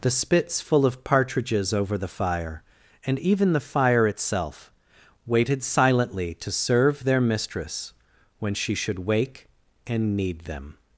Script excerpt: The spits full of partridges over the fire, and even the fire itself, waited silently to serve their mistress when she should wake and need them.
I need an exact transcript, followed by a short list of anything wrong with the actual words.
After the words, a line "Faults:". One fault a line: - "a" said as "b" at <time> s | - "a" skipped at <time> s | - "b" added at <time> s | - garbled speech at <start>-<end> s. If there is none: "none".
The spits full of partridges over the fire, and even the fire itself, waited silently to serve their mistress when she should wake and need them.
Faults:
none